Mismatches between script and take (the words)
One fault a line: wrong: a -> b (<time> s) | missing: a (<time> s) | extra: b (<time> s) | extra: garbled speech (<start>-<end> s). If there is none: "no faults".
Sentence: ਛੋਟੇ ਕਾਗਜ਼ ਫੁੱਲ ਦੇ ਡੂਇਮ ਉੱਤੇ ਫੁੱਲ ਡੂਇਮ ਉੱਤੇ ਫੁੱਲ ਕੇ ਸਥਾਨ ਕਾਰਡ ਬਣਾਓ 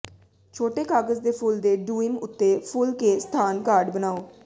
extra: ਦੇ (1.2 s)
missing: ਡੂਇਮ ਉੱਤੇ ਫੁੱਲ (2.9 s)